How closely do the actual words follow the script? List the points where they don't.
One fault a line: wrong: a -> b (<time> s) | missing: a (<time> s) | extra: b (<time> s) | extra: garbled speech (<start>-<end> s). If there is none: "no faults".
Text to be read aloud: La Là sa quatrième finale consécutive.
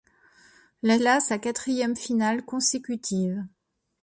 no faults